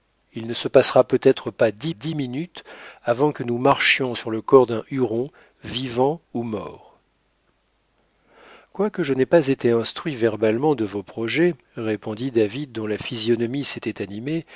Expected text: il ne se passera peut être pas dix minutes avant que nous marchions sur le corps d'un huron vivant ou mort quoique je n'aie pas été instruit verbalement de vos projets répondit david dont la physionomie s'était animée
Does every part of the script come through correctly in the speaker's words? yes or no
no